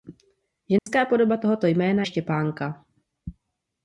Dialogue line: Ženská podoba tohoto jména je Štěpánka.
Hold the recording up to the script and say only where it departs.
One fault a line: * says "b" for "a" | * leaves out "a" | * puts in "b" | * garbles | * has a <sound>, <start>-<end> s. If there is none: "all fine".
* has a dropout, 0.8-0.9 s
* leaves out "je"